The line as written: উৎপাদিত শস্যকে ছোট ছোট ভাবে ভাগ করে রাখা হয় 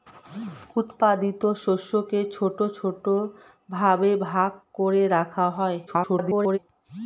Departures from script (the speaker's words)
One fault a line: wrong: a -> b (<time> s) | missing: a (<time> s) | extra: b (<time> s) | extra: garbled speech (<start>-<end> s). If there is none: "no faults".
extra: garbled speech (5.9-6.6 s)